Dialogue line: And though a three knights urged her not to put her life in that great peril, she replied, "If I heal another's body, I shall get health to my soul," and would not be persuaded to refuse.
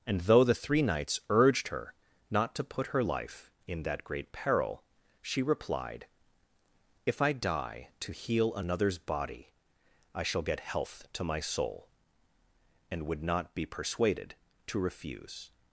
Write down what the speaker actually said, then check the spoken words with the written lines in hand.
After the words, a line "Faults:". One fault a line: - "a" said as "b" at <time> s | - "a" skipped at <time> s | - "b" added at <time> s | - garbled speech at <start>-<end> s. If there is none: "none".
And though the three knights urged her not to put her life in that great peril, she replied, "If I die to heal another's body, I shall get health to my soul," and would not be persuaded to refuse.
Faults:
- "a" said as "the" at 0.4 s
- "die to" added at 7.3 s